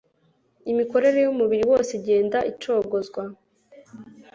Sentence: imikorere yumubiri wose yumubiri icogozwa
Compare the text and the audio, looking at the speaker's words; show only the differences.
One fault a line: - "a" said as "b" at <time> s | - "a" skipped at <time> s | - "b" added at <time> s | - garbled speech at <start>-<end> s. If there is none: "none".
- "yumubiri" said as "igenda" at 2.0 s